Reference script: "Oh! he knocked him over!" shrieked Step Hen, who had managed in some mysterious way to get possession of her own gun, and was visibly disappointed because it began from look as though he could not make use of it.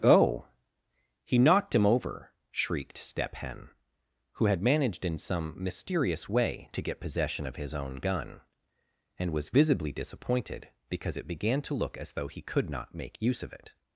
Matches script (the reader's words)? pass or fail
fail